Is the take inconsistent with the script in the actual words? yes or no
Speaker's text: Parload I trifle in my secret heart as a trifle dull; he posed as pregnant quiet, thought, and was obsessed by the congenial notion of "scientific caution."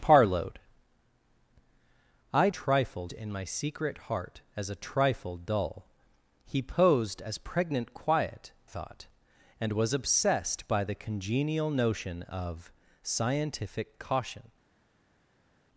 no